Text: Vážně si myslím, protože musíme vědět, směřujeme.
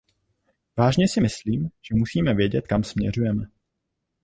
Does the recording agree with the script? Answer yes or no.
no